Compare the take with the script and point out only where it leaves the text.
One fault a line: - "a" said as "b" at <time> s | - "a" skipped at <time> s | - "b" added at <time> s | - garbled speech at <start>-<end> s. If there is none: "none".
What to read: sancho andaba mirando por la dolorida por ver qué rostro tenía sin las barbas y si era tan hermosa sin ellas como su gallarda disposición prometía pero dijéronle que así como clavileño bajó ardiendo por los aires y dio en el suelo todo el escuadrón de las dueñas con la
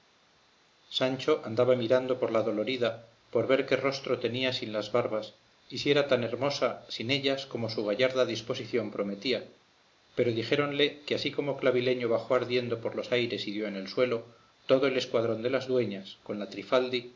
none